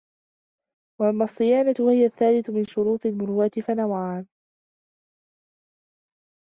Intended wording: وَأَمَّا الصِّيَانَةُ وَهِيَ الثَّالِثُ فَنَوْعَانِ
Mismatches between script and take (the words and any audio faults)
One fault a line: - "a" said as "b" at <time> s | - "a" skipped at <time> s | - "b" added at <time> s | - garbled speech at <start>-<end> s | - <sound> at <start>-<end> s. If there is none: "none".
- "مِنْ شُرُوطِ الْمُرُوءَةِ" added at 2.5 s